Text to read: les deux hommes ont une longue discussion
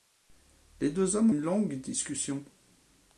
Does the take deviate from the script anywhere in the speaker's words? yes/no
yes